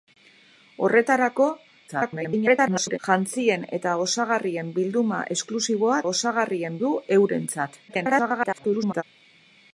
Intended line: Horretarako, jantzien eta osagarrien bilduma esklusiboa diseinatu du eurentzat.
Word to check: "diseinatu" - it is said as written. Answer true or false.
false